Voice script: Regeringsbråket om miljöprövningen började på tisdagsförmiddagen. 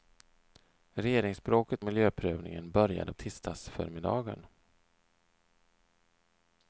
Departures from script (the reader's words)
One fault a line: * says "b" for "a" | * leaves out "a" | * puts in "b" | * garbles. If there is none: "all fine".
* leaves out "om"
* leaves out "på"